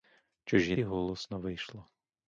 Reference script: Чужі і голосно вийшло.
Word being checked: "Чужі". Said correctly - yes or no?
yes